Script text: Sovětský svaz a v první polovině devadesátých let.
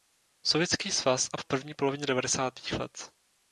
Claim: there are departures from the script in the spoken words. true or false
false